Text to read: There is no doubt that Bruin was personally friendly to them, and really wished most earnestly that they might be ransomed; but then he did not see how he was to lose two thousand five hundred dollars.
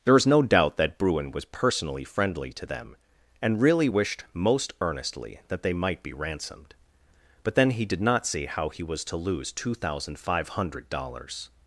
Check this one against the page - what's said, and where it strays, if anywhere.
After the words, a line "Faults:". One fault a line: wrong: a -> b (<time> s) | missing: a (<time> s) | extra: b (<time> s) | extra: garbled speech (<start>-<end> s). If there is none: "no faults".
There is no doubt that Bruin was personally friendly to them, and really wished most earnestly that they might be ransomed; but then he did not see how he was to lose two thousand five hundred dollars.
Faults:
no faults